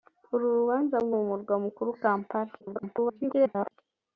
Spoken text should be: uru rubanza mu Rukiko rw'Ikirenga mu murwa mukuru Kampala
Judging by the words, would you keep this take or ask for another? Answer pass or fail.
fail